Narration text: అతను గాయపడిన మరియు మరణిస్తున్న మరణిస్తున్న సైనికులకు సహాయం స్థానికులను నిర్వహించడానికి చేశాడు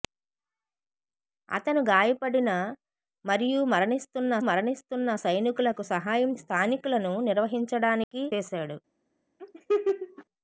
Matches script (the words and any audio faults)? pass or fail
fail